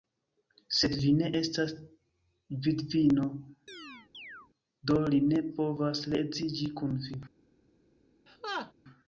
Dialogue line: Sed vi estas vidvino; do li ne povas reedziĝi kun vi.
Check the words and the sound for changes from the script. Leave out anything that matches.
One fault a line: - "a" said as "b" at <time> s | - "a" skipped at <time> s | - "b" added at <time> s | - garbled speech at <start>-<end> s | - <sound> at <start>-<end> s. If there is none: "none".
- "ne" added at 1.2 s
- chirp at 3.7-4.5 s
- laugh at 8.3-8.7 s